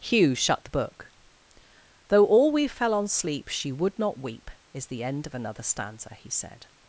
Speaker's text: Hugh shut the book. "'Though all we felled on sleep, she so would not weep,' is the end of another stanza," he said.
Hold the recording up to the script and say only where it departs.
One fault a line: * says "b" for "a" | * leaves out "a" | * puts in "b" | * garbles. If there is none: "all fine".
* says "fell" for "felled"
* leaves out "so"